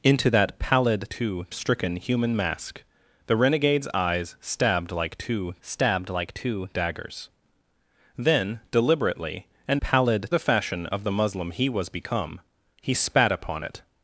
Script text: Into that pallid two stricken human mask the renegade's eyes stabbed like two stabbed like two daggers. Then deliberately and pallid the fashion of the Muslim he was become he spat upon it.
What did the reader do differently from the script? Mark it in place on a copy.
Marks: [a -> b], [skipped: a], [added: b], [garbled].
Into that pallid two stricken human mask the renegade's eyes stabbed like two stabbed like two daggers. Then deliberately and pallid the fashion of the Muslim he was become he spat upon it.